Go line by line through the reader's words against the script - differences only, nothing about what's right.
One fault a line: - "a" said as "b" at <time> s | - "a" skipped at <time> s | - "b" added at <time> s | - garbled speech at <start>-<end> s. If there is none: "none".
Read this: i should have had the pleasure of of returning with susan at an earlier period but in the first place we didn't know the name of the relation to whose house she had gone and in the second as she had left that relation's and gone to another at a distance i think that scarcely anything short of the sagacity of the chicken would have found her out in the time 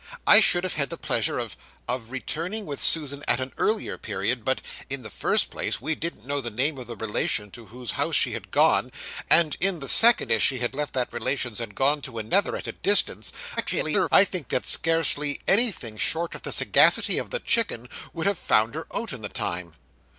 - garbled speech at 13.6-14.1 s